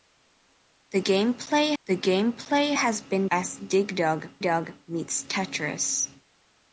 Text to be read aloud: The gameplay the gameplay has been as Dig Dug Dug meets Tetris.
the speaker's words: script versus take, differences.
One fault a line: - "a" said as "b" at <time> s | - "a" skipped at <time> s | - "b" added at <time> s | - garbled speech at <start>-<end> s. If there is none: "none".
none